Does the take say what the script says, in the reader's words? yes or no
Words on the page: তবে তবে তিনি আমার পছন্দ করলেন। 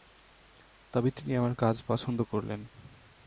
no